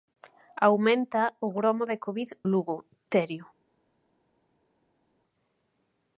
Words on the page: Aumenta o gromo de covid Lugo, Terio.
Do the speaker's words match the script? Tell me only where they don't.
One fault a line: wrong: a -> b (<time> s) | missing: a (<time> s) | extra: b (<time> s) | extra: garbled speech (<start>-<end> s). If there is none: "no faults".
no faults